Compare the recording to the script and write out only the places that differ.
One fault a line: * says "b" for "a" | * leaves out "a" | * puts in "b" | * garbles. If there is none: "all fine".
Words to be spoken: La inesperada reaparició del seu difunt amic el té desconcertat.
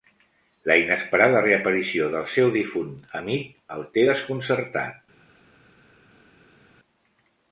all fine